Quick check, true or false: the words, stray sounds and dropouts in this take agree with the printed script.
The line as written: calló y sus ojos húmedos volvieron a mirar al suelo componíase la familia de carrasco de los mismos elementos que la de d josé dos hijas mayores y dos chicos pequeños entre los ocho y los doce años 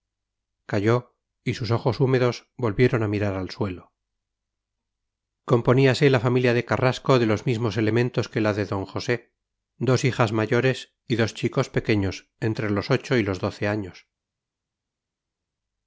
true